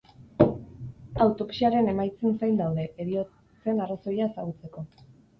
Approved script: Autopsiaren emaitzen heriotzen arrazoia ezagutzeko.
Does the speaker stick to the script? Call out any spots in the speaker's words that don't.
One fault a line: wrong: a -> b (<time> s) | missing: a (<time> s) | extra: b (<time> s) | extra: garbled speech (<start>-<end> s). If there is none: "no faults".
extra: zain daude (2.4 s)